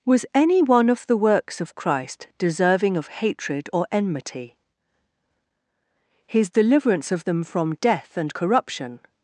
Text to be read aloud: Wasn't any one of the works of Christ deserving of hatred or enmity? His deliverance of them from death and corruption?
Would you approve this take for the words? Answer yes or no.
no